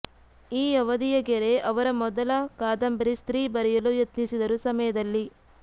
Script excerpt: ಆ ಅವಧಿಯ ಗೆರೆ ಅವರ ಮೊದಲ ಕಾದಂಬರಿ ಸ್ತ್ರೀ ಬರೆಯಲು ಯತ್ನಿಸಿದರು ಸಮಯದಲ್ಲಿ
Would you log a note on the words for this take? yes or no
yes